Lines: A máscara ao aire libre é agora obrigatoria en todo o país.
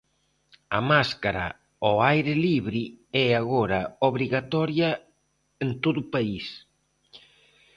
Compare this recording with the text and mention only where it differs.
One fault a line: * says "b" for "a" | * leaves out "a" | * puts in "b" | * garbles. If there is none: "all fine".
all fine